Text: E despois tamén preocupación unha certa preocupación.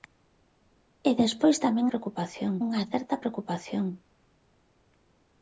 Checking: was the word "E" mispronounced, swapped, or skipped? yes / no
no